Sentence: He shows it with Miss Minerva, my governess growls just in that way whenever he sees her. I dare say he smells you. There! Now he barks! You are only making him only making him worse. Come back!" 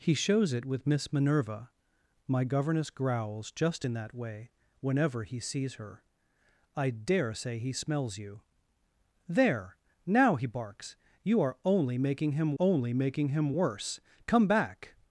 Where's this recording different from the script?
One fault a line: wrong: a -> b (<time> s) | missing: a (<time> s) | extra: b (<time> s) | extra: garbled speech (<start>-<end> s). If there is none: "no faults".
no faults